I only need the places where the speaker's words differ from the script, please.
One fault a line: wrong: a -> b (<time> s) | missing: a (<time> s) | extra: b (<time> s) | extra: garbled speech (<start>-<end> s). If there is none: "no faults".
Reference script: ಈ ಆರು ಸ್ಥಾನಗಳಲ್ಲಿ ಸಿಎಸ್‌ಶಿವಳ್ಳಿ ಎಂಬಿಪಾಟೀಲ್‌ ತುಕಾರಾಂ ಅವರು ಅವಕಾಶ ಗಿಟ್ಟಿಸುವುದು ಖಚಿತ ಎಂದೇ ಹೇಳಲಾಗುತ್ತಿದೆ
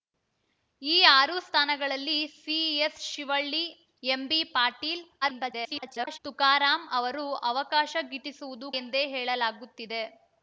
extra: garbled speech (5.2-6.2 s)
missing: ಖಚಿತ (8.7 s)